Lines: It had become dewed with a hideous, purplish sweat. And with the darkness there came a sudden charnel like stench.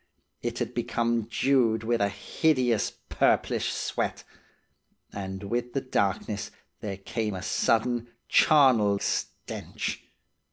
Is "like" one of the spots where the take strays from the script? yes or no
yes